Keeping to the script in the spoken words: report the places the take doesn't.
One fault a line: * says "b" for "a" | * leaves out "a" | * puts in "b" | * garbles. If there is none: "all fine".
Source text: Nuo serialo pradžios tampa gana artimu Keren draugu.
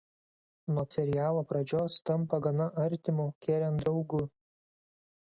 all fine